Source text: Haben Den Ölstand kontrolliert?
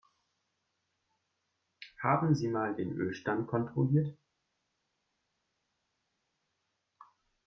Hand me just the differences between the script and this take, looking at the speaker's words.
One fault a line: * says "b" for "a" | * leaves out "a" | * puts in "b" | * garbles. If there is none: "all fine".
* puts in "Sie mal"